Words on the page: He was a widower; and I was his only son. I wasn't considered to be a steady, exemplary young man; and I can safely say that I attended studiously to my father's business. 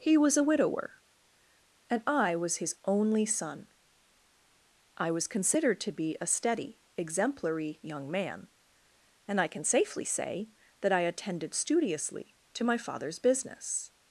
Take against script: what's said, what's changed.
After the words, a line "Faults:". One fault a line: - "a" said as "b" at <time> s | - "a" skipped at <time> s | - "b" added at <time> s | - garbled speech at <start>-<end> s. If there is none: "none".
He was a widower; and I was his only son. I was considered to be a steady, exemplary young man; and I can safely say that I attended studiously to my father's business.
Faults:
- "wasn't" said as "was" at 5.1 s